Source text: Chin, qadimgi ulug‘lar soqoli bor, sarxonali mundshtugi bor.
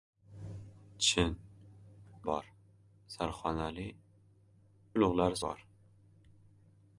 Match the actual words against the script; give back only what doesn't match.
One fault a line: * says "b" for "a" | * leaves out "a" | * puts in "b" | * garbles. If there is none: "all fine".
* leaves out "qadimgi ulug‘lar soqoli"
* says "ulug‘lar" for "mundshtugi"